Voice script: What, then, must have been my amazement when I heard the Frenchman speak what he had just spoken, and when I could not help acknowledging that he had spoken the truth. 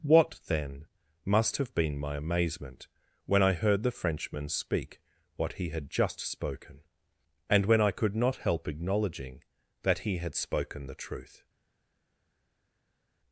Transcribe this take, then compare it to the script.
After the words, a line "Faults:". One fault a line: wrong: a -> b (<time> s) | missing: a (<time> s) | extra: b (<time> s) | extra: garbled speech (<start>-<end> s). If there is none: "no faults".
What, then, must have been my amazement when I heard the Frenchman speak what he had just spoken, and when I could not help acknowledging that he had spoken the truth.
Faults:
no faults